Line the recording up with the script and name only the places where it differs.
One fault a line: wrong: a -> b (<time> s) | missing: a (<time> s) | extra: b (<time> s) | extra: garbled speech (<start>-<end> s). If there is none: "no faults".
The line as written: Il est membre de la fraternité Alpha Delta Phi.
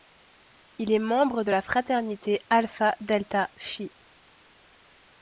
no faults